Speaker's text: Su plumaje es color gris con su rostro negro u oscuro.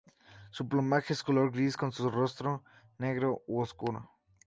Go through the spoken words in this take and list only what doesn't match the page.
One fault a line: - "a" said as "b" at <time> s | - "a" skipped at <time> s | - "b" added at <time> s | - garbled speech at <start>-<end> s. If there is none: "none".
none